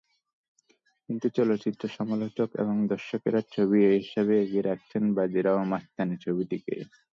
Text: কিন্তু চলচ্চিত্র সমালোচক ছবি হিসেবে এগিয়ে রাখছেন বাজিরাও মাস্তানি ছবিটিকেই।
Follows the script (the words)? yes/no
no